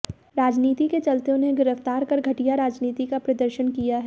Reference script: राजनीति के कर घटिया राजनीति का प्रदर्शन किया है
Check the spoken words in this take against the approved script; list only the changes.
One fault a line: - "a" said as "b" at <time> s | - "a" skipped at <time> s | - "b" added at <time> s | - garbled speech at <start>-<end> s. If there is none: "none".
- "चलते उन्हें गिरफ्तार" added at 1.0 s